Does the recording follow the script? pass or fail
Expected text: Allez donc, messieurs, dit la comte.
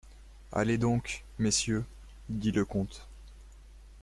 fail